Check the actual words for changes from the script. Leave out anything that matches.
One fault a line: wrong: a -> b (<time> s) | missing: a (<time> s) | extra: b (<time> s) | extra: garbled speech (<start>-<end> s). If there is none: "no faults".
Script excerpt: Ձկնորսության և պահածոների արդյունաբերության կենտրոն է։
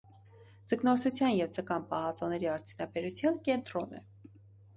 extra: ձկան (1.6 s)